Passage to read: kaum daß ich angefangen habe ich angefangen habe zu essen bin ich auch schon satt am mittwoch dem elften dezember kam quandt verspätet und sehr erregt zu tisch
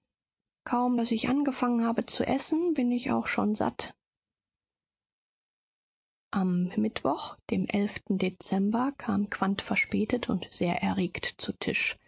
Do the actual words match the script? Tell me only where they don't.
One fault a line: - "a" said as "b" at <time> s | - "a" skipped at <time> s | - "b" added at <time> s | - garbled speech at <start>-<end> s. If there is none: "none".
- "ich angefangen habe" skipped at 2.0 s